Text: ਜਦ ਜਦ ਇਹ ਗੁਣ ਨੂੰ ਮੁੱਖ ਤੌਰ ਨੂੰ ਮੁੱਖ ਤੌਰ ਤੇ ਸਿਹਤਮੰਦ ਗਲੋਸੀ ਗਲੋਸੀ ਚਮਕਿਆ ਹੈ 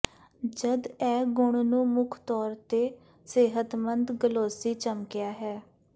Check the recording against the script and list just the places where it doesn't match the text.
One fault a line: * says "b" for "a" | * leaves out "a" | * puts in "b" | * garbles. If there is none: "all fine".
* leaves out "ਜਦ"
* leaves out "ਨੂੰ ਮੁੱਖ ਤੌਰ"
* leaves out "ਗਲੋਸੀ"